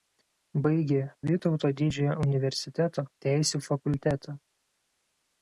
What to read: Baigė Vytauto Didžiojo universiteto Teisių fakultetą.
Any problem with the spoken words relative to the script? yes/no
no